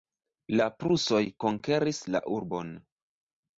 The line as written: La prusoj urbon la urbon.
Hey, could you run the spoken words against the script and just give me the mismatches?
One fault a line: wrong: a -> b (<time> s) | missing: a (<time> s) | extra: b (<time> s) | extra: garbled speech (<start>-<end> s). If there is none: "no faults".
wrong: urbon -> konkeris (1.5 s)